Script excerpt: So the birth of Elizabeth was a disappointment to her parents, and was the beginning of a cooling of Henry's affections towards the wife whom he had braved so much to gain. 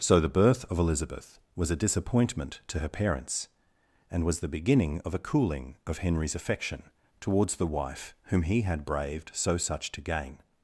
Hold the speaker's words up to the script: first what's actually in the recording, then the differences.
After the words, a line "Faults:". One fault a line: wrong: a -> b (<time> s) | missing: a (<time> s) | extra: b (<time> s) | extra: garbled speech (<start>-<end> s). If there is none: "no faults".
So the birth of Elizabeth was a disappointment to her parents, and was the beginning of a cooling of Henry's affection towards the wife whom he had braved so such to gain.
Faults:
wrong: affections -> affection (6.3 s)
wrong: much -> such (9.6 s)